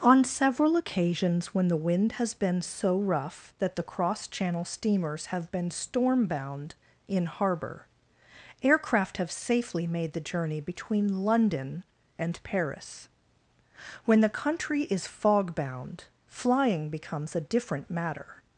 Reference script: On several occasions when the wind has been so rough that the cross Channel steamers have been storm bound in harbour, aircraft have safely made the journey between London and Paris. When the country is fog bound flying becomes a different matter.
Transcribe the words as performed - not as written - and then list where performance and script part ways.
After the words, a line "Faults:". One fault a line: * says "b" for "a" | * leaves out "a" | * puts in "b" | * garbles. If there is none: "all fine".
On several occasions when the wind has been so rough that the cross Channel steamers have been storm bound in harbour, aircraft have safely made the journey between London and Paris. When the country is fog bound flying becomes a different matter.
Faults:
all fine